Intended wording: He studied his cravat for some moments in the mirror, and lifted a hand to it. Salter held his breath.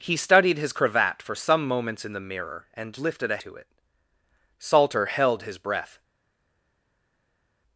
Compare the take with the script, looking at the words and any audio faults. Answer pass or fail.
fail